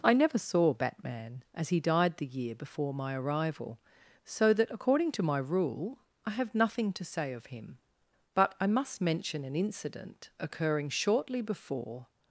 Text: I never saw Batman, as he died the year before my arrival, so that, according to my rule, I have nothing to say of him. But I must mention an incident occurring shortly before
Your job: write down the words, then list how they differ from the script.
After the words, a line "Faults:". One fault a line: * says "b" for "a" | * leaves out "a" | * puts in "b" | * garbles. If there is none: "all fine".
I never saw Batman, as he died the year before my arrival, so that, according to my rule, I have nothing to say of him. But I must mention an incident occurring shortly before
Faults:
all fine